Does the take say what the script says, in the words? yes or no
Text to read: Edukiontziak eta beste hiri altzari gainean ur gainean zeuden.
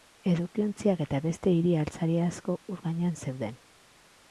no